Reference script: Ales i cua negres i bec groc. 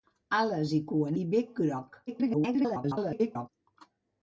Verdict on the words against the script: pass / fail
fail